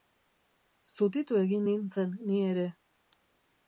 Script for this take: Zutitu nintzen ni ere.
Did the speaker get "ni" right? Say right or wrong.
right